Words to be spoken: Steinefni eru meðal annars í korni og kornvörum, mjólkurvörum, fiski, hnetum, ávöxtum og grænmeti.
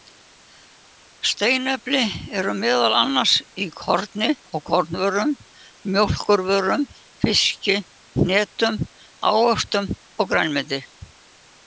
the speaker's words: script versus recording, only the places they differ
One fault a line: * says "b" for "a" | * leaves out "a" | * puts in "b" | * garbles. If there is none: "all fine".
all fine